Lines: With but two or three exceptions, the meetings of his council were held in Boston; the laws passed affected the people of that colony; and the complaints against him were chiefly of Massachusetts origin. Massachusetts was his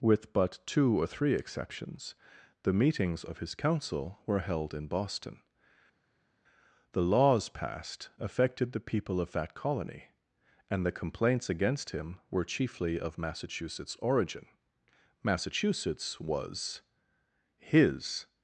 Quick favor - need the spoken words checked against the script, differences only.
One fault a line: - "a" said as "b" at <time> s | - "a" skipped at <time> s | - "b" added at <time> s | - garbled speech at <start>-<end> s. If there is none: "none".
none